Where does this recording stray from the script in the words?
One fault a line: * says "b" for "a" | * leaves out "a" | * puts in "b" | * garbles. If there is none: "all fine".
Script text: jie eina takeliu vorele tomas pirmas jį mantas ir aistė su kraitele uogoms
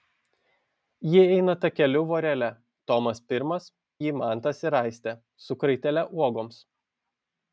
all fine